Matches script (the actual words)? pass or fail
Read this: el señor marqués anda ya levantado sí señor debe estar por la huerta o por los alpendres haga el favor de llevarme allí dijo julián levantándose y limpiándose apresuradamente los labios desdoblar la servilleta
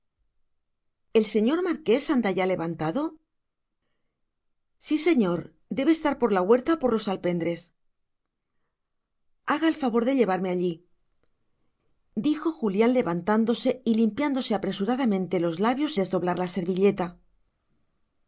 pass